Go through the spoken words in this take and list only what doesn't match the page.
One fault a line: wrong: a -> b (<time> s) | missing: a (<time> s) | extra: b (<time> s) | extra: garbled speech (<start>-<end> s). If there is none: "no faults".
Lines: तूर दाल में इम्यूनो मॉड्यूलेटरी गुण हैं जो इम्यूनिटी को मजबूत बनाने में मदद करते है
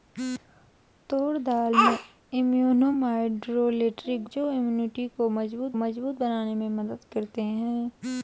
missing: गुण हैं (4.2 s)
extra: मजबूत (5.8 s)